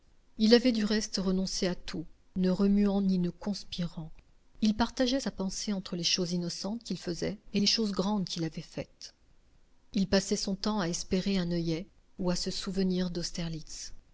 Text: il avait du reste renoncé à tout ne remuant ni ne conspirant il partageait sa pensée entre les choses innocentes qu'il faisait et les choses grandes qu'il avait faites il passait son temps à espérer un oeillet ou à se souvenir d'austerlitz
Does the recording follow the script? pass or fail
pass